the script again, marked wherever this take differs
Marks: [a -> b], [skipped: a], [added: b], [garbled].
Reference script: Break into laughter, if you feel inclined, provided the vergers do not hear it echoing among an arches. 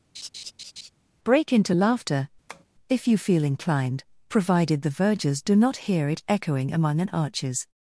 Break into laughter, if you feel inclined, provided the vergers do not hear it echoing among an arches.